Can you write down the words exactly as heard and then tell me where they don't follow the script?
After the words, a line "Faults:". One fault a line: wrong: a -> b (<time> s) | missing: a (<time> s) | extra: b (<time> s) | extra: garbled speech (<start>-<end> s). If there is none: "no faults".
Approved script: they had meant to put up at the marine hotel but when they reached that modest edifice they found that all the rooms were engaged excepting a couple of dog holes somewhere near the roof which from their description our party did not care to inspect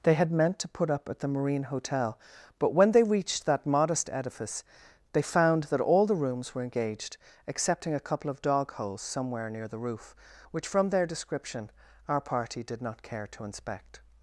they had meant to put up at the marine hotel but when they reached that modest edifice they found that all the rooms were engaged excepting a couple of dog holes somewhere near the roof which from their description our party did not care to inspect
Faults:
no faults